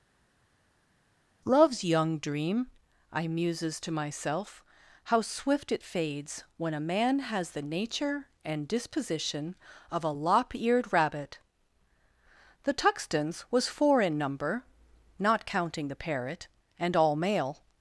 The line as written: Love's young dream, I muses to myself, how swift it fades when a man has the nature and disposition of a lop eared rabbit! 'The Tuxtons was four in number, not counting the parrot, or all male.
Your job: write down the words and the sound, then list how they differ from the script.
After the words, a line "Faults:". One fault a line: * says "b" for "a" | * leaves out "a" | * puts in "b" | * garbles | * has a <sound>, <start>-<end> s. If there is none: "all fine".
Love's young dream, I muses to myself, how swift it fades when a man has the nature and disposition of a lop eared rabbit! 'The Tuxtons was four in number, not counting the parrot, and all male.
Faults:
* says "and" for "or"